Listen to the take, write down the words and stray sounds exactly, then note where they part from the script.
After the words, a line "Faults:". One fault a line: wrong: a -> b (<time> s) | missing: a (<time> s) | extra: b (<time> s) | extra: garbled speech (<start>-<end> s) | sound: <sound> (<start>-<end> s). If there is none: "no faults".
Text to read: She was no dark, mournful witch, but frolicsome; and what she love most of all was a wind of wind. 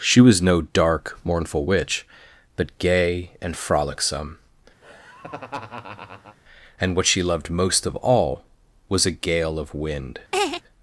She was no dark, mournful witch, but gay and frolicsome; and what she loved most of all was a gale of wind.
Faults:
extra: gay and (2.8 s)
sound: laugh (4.8-6.4 s)
wrong: love -> loved (7.2 s)
wrong: wind -> gale (9.1 s)
sound: laugh (10.3-10.6 s)